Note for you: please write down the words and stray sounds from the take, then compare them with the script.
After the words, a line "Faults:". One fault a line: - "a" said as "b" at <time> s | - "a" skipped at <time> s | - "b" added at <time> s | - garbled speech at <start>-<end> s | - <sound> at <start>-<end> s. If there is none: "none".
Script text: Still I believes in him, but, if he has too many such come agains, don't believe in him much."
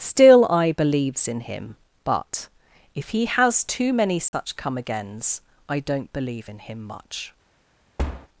Still I believes in him, but, if he has too many such come agains, I don't believe in him much."
Faults:
- dropout at 4.3-4.3 s
- "I" added at 5.7 s
- thud at 8.0-8.3 s